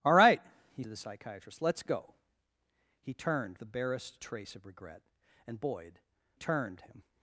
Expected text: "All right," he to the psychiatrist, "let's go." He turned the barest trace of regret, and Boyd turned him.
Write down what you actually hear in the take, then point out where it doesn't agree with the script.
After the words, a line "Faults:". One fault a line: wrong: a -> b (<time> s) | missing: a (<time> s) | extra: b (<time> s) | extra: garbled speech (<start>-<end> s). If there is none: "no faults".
"All right," he to the psychiatrist, "let's go." He turned the barest trace of regret, and Boyd turned him.
Faults:
no faults